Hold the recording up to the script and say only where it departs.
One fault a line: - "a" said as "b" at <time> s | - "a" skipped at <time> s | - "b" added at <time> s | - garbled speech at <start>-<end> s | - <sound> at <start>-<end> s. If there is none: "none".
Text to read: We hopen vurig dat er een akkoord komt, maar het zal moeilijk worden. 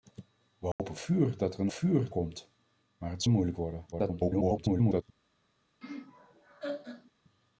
- dropout at 0.7-0.8 s
- "akkoord" said as "vurig" at 1.7 s
- "zal" skipped at 3.2 s
- garbled speech at 3.9-5.0 s
- laugh at 5.8-7.1 s